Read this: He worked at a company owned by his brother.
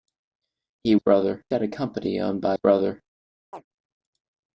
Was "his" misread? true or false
true